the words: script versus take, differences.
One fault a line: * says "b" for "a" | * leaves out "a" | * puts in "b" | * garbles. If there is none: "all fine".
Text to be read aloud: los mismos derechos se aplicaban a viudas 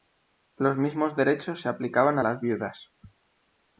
* puts in "las"